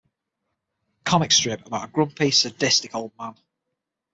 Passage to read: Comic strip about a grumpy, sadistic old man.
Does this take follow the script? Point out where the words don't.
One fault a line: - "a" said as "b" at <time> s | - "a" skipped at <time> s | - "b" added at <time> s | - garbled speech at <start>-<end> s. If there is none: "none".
none